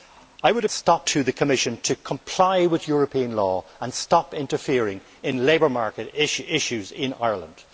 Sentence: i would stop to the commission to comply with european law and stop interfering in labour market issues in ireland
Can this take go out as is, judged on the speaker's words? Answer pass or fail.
pass